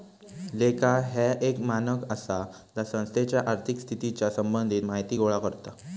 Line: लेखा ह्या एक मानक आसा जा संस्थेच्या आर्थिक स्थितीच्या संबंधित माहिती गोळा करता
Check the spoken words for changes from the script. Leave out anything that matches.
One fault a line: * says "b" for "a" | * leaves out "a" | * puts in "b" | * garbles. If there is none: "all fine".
all fine